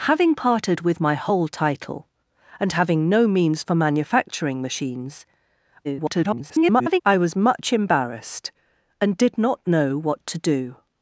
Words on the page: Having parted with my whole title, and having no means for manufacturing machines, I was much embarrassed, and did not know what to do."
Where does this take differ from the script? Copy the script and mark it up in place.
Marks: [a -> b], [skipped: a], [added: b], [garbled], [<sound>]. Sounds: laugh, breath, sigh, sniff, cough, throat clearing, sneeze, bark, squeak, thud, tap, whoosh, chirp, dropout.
Having parted with my whole title, and having no means for manufacturing machines, [garbled] I was much embarrassed, and did not know what to do."